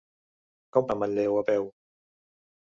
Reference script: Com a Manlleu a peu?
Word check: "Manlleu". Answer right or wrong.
right